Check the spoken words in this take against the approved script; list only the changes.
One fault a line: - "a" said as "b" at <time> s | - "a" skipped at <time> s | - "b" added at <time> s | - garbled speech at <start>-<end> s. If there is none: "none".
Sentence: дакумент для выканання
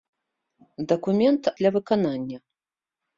none